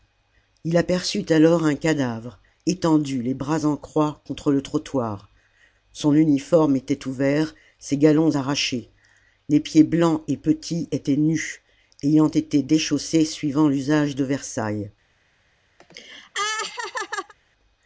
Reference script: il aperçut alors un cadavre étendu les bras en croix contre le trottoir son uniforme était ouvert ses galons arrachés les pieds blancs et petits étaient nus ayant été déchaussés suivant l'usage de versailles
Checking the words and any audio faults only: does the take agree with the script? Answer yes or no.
no